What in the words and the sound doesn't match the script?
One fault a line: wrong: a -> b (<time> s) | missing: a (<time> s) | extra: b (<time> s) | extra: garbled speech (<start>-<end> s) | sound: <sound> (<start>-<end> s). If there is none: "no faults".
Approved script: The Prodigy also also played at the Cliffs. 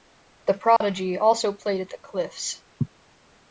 sound: dropout (0.8-0.8 s)
missing: also (1.5 s)